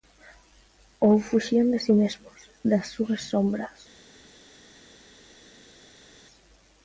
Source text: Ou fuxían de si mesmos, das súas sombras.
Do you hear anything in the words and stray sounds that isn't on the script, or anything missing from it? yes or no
no